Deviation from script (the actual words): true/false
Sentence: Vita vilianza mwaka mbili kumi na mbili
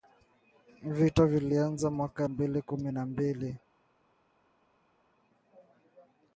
false